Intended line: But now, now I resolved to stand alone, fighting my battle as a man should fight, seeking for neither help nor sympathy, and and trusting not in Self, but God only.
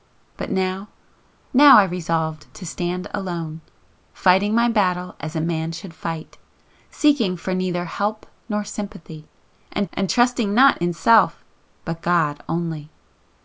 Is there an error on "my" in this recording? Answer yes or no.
no